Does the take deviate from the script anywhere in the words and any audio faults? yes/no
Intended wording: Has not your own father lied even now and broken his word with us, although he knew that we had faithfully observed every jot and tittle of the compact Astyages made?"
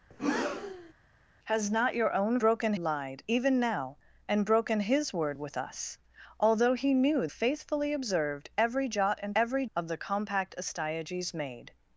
yes